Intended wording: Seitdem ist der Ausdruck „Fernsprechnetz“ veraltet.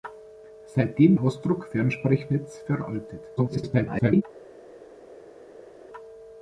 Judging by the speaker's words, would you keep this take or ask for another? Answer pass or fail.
fail